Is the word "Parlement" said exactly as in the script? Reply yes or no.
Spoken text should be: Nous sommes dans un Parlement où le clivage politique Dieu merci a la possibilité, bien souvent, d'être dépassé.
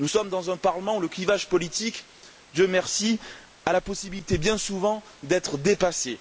yes